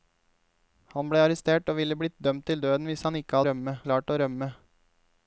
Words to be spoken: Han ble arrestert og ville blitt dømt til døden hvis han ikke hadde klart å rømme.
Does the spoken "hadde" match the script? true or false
false